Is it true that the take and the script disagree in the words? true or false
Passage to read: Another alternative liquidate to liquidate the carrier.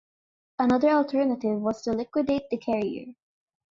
true